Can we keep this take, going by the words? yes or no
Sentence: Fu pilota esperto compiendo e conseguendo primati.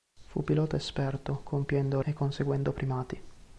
yes